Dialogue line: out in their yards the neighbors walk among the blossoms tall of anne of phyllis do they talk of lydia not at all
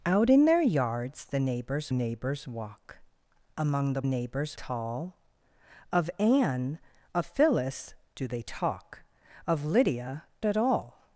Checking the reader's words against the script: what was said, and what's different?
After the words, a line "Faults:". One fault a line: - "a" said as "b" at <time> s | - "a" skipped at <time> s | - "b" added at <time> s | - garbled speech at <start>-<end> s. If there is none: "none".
out in their yards the neighbors neighbors walk among the neighbors tall of anne of phyllis do they talk of lydia at all
Faults:
- "neighbors" added at 1.9 s
- "blossoms" said as "neighbors" at 4.0 s
- "not" skipped at 10.2 s